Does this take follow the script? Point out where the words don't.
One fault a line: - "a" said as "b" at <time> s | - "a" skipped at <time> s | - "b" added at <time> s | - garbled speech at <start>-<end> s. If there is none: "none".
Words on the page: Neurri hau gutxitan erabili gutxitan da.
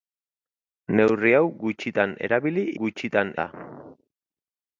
none